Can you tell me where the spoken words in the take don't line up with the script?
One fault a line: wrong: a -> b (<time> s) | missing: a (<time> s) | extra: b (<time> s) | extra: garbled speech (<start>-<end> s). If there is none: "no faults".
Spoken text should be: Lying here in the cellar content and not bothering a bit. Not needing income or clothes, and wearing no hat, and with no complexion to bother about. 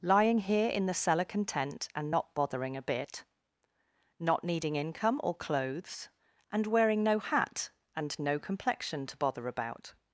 missing: with (8.2 s)